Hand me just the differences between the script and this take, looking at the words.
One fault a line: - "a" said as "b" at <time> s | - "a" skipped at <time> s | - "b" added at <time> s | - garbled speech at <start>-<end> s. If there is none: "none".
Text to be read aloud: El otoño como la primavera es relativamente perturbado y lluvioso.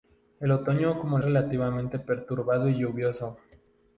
- "la primavera es" skipped at 1.2 s